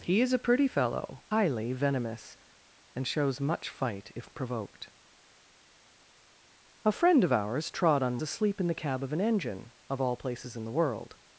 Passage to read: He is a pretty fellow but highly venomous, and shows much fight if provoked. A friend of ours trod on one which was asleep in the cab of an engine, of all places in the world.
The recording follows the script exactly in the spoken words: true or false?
false